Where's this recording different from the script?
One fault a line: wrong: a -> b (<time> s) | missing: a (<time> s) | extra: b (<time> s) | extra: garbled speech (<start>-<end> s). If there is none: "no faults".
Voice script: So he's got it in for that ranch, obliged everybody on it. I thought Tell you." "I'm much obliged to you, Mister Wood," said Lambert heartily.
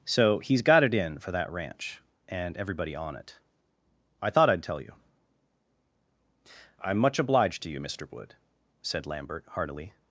wrong: obliged -> and (2.3 s)
extra: I'd (4.5 s)